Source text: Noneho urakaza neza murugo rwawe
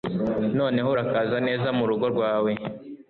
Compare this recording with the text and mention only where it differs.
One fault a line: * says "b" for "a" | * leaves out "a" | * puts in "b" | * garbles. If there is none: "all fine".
all fine